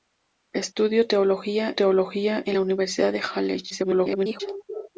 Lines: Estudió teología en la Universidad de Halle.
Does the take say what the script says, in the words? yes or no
no